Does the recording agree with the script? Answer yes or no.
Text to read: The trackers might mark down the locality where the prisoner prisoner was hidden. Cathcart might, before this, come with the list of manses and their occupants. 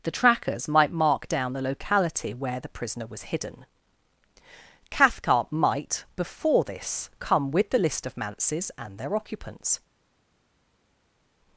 no